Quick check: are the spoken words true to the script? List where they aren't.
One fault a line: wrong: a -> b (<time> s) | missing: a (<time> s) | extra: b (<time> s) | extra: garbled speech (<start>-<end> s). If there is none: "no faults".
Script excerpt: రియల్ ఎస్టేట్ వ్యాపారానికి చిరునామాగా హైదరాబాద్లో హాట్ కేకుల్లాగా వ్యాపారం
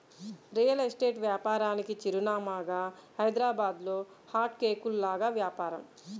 no faults